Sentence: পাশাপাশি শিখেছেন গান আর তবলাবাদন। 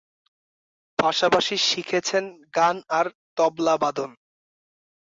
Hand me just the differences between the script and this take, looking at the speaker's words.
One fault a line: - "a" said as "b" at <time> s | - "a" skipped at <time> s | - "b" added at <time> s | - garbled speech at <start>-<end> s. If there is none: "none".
none